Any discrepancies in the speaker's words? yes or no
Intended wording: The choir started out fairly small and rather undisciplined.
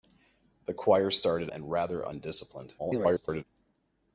yes